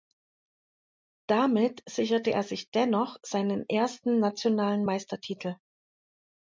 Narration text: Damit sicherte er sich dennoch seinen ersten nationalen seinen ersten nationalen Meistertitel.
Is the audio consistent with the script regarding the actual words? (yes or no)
no